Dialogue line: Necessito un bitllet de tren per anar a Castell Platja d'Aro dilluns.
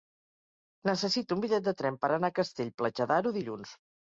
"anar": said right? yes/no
yes